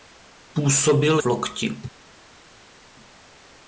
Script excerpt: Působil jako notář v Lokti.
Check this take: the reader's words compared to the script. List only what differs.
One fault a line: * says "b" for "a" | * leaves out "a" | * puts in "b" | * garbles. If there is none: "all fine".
* leaves out "jako notář"